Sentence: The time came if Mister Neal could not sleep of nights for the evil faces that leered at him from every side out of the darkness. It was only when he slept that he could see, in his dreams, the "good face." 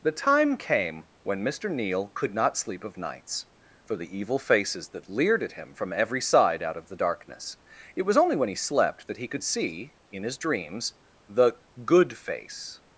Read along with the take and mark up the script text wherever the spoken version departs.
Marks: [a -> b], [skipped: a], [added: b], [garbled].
The time came [if -> when] Mister Neal could not sleep of nights for the evil faces that leered at him from every side out of the darkness. It was only when he slept that he could see, in his dreams, the "good face."